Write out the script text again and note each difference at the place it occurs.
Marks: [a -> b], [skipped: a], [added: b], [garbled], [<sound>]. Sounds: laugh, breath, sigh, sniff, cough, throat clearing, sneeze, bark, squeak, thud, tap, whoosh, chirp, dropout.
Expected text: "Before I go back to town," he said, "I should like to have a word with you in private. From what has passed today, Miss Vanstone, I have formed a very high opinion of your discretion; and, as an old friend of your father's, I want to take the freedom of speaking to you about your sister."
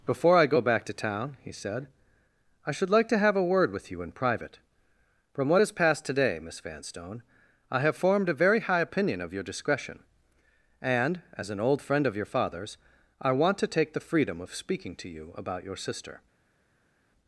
"Before I go back to town," he said, "I should like to have a word with you in private. From what has passed today, Miss Vanstone, I have formed a very high opinion of your discretion; and, as an old friend of your father's, I want to take the freedom of speaking to you about your sister."